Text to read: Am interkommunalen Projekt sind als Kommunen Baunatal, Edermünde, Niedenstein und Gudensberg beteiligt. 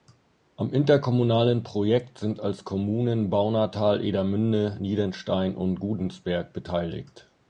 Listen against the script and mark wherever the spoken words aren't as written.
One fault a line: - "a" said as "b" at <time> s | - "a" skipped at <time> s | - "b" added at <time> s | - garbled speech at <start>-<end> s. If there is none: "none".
none